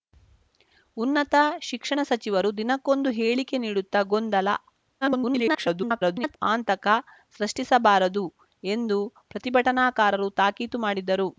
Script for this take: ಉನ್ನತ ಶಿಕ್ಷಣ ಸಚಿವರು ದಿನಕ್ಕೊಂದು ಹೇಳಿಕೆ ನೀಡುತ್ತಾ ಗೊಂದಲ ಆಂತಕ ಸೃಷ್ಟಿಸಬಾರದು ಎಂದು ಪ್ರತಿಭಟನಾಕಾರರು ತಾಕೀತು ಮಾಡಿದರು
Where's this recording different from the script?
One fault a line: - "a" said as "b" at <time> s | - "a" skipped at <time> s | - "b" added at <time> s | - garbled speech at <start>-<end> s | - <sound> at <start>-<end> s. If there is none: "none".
- garbled speech at 5.0-6.4 s